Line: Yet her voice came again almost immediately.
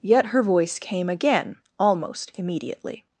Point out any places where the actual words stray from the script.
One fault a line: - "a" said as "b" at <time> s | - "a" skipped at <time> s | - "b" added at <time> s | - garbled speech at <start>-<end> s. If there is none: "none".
none